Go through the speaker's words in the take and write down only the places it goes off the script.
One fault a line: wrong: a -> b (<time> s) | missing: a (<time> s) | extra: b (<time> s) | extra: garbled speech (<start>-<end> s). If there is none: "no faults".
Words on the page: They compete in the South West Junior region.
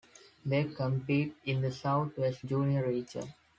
no faults